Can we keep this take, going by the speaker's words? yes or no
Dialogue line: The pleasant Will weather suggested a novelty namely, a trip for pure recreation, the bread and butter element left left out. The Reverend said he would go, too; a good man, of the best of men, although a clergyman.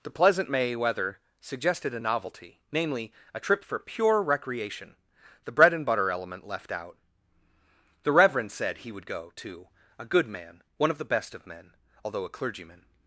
no